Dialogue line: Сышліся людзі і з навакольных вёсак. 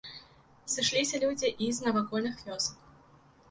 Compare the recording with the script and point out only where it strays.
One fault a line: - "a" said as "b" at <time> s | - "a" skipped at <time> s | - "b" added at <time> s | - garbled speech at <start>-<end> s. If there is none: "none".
none